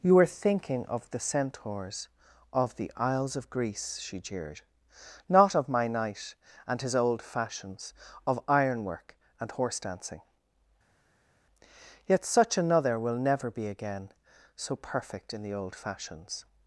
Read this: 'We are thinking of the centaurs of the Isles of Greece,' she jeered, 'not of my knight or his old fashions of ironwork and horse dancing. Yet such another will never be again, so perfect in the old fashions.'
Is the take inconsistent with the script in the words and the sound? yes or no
yes